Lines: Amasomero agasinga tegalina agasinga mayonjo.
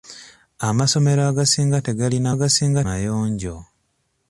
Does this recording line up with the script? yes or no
yes